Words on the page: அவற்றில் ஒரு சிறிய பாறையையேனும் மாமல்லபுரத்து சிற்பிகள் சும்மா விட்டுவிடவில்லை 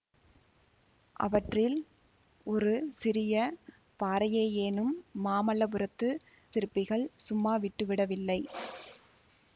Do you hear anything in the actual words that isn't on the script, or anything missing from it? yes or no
no